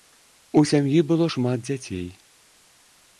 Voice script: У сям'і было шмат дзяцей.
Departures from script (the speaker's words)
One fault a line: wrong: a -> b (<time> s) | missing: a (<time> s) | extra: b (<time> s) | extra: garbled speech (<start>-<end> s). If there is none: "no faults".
no faults